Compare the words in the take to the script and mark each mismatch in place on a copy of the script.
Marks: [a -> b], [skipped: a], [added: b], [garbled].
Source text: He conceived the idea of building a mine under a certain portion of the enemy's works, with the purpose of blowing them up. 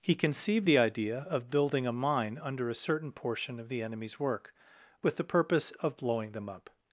He conceived the idea of building a mine under a certain portion of the enemy's [works, -> work] with the purpose of blowing them up.